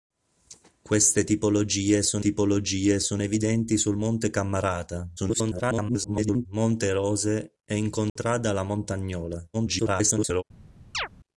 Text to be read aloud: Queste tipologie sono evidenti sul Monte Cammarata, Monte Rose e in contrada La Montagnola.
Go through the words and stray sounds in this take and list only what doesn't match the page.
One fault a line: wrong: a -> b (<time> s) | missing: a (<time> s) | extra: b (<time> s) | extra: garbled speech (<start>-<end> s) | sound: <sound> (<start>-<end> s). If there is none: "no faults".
extra: tipologie sono (2.2 s)
extra: garbled speech (5.2-6.5 s)
sound: dropout (8.1-8.2 s)
extra: garbled speech (9.5-10.4 s)
sound: chirp (10.9-11.1 s)